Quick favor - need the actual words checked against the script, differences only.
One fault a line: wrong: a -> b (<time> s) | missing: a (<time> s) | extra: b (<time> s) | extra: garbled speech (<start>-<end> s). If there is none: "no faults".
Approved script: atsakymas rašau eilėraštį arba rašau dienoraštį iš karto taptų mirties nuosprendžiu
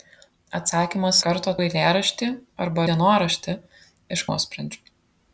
wrong: rašau -> karto (1.3 s)
missing: rašau (2.9 s)
missing: karto taptų mirties (4.2 s)